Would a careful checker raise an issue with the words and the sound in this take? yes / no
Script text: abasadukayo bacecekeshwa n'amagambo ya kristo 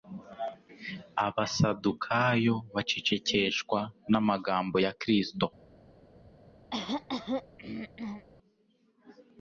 yes